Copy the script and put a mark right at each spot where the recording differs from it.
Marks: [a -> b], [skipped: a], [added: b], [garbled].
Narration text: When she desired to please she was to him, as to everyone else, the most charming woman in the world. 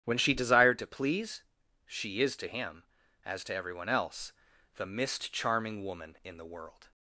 When she desired to please she [was -> is] to him, as to everyone else, the [most -> mist] charming woman in the world.